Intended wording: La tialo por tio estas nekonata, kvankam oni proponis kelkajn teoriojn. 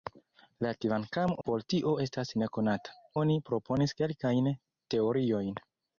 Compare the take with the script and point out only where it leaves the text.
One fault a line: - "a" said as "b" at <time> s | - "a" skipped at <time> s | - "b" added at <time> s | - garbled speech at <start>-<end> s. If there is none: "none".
- "tialo" said as "kvankam" at 0.9 s
- "kvankam" skipped at 2.9 s